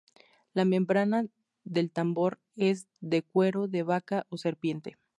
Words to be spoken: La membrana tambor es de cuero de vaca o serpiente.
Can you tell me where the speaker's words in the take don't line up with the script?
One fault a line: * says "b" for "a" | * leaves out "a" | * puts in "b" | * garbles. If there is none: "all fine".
* puts in "del"